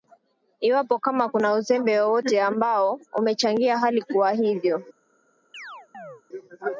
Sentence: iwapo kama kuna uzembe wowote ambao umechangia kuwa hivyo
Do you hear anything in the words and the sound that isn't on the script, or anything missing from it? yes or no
yes